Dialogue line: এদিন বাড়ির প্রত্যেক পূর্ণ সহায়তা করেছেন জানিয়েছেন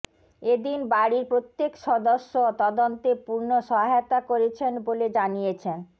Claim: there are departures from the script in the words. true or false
true